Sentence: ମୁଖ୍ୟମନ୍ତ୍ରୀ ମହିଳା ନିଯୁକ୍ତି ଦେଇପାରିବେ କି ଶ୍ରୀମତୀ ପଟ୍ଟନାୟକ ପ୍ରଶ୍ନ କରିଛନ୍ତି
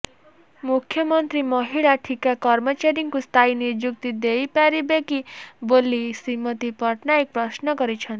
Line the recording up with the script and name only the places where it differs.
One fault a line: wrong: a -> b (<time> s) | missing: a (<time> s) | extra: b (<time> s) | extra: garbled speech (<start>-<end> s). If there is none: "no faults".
extra: ଠିକା କର୍ମଚାରୀଙ୍କୁ ସ୍ଥାୟୀ (2.1 s)
extra: ବୋଲି (5.7 s)